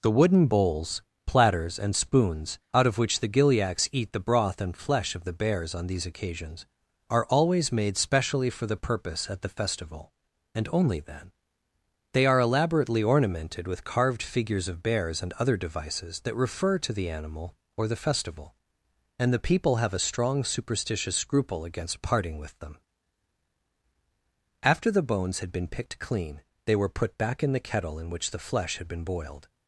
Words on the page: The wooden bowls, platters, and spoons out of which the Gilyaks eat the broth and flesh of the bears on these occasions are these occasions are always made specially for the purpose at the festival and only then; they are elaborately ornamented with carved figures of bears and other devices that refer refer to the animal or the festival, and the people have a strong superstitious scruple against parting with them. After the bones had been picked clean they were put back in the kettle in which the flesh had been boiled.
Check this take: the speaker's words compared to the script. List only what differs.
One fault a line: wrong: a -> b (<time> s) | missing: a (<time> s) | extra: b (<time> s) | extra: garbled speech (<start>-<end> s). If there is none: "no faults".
missing: these occasions are (7.2 s)
missing: refer (16.8 s)